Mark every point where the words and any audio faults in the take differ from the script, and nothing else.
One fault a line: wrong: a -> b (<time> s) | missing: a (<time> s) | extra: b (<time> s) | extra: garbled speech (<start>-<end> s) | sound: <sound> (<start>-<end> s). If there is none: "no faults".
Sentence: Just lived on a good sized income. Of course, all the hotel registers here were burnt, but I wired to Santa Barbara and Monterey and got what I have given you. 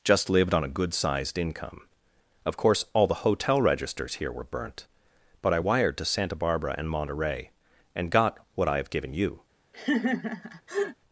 sound: laugh (9.7-11.0 s)